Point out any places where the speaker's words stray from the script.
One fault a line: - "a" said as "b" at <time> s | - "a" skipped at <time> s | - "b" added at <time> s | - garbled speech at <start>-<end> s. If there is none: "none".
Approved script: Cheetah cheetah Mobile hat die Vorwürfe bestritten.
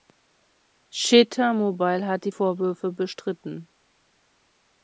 - "cheetah" skipped at 1.5 s